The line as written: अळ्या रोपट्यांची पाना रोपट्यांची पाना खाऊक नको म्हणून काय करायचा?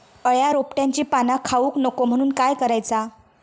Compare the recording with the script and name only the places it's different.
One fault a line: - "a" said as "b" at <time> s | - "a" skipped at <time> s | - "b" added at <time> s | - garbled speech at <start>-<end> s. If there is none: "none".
- "रोपट्यांची पाना" skipped at 1.4 s